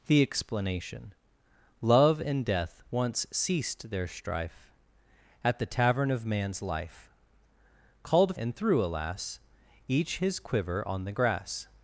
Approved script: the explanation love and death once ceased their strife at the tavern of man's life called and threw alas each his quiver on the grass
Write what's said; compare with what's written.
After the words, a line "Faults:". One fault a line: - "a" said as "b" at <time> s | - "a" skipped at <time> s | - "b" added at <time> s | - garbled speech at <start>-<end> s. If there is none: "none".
the explanation love and death once ceased their strife at the tavern of man's life called and threw alas each his quiver on the grass
Faults:
none